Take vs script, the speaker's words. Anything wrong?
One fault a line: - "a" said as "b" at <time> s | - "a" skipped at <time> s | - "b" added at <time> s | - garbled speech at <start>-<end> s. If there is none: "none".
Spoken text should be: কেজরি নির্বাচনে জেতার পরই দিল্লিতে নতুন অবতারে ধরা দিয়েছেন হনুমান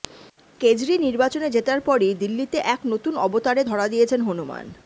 - "এক" added at 2.7 s